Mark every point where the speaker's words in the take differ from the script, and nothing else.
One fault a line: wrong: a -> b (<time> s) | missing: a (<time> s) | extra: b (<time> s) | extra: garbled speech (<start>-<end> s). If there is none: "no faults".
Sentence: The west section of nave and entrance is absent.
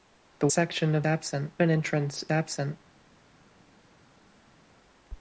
missing: west (0.5 s)
wrong: nave -> absent (1.1 s)
missing: is (2.2 s)